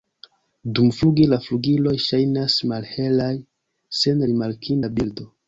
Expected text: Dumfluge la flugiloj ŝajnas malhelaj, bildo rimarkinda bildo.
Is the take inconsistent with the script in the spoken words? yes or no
yes